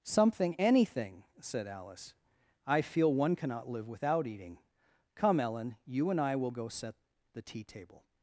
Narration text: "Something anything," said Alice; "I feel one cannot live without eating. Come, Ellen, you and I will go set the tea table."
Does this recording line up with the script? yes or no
yes